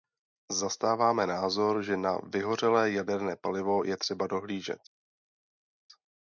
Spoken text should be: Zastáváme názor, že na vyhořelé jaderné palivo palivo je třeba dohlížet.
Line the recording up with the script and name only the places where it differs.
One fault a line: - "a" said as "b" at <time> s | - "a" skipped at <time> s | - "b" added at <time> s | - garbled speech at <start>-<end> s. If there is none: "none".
- "palivo" skipped at 3.8 s